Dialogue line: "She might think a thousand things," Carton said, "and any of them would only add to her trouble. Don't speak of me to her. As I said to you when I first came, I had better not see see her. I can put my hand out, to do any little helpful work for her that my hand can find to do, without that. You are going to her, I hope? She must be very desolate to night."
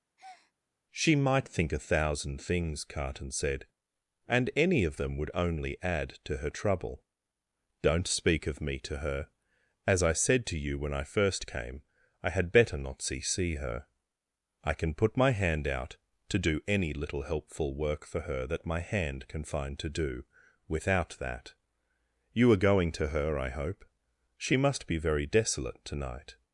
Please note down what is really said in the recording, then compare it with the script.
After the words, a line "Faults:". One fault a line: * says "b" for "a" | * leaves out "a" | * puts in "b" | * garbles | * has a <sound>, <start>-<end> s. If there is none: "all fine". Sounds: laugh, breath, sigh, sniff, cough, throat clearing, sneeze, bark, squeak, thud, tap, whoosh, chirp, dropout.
"She might think a thousand things," Carton said, "and any of them would only add to her trouble. Don't speak of me to her. As I said to you when I first came, I had better not see see her. I can put my hand out, to do any little helpful work for her that my hand can find to do, without that. You are going to her, I hope? She must be very desolate to night."
Faults:
* has a breath, 0.2-0.5 s